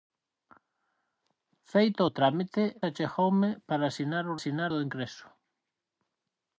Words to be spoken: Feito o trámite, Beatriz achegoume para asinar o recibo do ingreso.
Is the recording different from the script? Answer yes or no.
yes